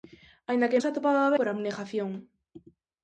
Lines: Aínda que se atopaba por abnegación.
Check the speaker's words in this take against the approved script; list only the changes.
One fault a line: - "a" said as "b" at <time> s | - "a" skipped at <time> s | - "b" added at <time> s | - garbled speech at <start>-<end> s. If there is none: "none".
none